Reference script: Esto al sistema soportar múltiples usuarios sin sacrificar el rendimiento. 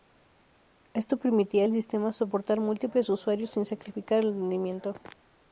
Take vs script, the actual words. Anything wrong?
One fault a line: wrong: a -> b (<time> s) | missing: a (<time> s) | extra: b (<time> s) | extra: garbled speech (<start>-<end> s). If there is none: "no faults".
extra: permitía (1.2 s)